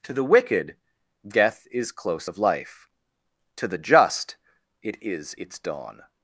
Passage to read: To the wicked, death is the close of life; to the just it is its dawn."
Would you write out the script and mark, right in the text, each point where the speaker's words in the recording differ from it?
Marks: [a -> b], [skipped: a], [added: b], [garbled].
To the wicked, death is [skipped: the] close of life; to the just it is its dawn."